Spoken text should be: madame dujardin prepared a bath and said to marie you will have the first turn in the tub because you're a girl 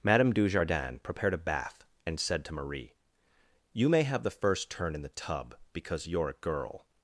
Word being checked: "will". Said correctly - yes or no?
no